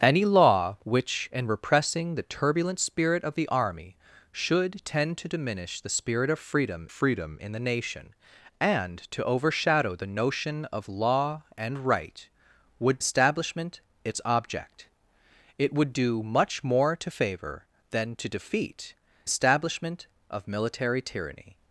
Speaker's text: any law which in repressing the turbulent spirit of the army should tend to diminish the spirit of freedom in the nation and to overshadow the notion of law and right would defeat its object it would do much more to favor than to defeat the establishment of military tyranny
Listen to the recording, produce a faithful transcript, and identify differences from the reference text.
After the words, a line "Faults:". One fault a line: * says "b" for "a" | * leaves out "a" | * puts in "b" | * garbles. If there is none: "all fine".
any law which in repressing the turbulent spirit of the army should tend to diminish the spirit of freedom freedom in the nation and to overshadow the notion of law and right would establishment its object it would do much more to favor than to defeat establishment of military tyranny
Faults:
* puts in "freedom"
* says "establishment" for "defeat"
* leaves out "the"